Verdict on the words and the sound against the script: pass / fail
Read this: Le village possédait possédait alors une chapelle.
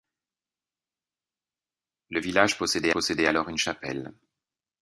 pass